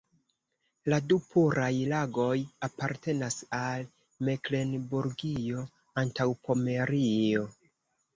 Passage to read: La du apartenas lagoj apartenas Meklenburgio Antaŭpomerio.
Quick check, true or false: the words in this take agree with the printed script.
false